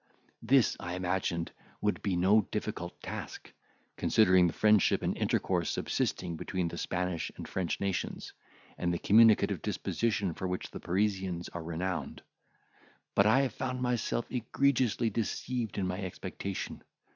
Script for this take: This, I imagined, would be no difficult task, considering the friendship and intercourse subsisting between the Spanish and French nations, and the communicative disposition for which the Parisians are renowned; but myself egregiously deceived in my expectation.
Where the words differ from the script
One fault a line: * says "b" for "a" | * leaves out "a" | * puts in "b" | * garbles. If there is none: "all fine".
* puts in "I have found"